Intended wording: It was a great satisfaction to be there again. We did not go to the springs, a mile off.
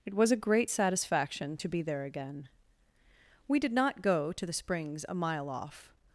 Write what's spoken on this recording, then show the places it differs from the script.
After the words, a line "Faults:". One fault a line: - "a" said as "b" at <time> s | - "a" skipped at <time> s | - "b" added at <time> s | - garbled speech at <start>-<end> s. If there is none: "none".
It was a great satisfaction to be there again. We did not go to the springs, a mile off.
Faults:
none